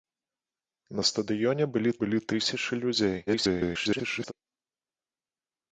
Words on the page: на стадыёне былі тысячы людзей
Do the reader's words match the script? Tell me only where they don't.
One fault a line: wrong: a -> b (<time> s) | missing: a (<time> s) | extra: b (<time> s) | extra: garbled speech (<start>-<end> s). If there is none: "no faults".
extra: былі (2.0 s)
extra: garbled speech (3.3-4.3 s)